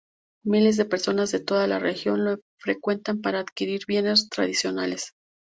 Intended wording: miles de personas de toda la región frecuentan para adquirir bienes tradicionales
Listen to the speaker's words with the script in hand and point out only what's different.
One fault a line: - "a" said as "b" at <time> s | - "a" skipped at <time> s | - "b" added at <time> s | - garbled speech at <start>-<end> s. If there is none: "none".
- "lo" added at 2.2 s